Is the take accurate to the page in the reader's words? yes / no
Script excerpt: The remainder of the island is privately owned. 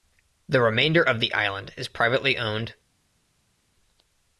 yes